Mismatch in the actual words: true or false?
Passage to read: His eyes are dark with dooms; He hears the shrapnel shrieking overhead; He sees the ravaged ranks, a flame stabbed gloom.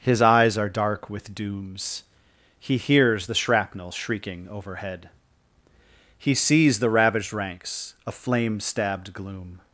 false